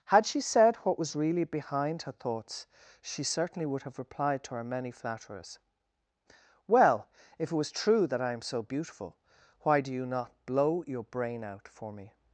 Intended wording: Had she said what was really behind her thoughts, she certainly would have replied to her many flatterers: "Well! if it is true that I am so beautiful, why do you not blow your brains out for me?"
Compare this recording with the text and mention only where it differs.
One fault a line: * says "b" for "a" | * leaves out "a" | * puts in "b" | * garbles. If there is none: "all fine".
* says "was" for "is"
* says "brain" for "brains"